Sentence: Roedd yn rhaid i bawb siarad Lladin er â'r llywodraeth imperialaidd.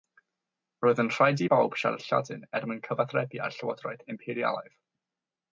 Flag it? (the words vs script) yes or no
yes